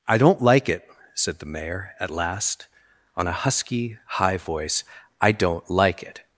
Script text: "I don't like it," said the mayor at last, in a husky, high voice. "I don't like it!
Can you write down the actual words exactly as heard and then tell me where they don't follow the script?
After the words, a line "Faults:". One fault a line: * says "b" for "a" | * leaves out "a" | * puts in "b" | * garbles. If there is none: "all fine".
"I don't like it," said the mayor at last, on a husky, high voice. "I don't like it!
Faults:
* says "on" for "in"